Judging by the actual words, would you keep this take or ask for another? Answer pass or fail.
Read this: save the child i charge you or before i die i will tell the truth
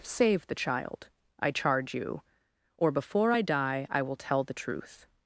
pass